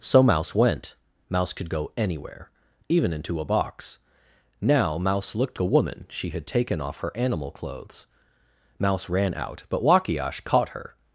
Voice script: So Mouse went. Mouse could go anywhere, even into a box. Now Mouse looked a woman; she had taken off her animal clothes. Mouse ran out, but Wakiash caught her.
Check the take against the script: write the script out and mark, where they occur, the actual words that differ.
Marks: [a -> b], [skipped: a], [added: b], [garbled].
So Mouse went. Mouse could go anywhere, even into a box. Now Mouse looked a woman; she had taken off her animal clothes. Mouse ran out, but Wakiash caught her.